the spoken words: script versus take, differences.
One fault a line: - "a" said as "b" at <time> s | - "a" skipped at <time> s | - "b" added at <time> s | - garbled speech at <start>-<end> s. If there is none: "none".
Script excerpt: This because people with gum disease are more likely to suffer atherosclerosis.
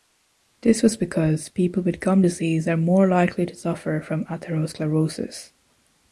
- "was" added at 0.8 s
- "from" added at 4.0 s